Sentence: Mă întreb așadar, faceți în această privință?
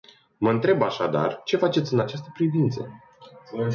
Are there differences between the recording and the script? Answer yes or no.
yes